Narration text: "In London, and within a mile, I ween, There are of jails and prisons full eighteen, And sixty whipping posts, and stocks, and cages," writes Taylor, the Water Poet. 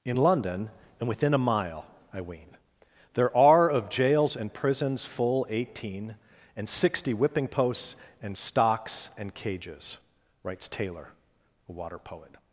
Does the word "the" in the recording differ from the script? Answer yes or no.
yes